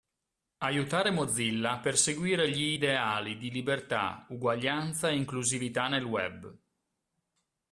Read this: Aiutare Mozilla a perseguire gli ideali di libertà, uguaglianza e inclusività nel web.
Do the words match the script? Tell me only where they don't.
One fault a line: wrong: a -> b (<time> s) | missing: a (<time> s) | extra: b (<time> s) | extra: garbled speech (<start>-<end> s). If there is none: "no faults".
no faults